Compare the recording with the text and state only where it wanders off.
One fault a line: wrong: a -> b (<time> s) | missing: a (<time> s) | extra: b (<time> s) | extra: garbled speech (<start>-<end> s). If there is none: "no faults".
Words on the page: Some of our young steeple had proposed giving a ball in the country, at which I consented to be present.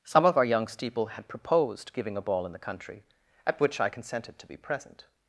no faults